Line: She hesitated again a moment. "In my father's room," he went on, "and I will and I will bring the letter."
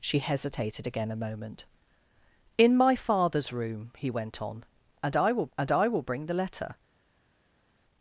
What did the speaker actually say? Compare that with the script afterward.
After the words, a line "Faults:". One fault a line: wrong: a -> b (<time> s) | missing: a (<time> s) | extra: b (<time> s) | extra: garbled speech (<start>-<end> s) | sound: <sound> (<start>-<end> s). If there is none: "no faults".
She hesitated again a moment. "In my father's room," he went on, "and I will and I will bring the letter."
Faults:
no faults